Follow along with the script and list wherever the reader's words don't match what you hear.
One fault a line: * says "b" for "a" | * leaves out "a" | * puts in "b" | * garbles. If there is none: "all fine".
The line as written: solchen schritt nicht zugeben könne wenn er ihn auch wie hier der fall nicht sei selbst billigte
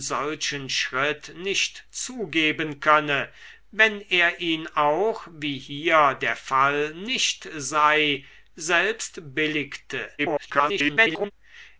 * garbles